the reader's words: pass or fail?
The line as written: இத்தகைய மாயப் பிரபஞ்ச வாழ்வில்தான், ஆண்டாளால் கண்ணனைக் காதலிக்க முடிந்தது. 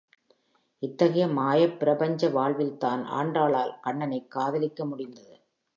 pass